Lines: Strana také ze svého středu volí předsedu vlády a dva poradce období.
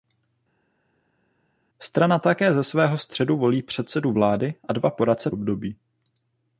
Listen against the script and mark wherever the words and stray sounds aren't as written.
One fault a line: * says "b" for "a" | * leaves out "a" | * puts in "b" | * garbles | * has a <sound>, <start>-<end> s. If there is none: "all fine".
all fine